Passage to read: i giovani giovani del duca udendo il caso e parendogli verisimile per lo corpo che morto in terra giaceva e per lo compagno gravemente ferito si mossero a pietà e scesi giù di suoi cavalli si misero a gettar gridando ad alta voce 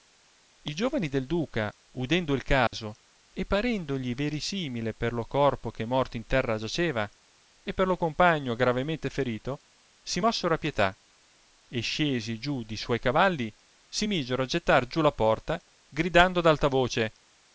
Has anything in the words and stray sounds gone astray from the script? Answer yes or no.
yes